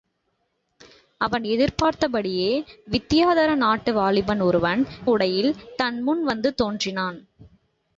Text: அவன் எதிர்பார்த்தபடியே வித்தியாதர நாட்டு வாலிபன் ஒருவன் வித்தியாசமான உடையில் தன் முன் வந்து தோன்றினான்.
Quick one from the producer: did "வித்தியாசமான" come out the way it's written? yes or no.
no